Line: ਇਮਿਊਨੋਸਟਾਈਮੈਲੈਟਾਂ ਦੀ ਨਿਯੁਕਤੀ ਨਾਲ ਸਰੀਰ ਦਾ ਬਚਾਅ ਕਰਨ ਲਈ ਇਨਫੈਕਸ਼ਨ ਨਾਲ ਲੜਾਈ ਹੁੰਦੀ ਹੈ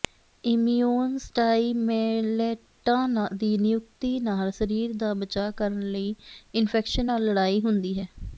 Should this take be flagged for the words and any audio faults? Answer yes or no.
no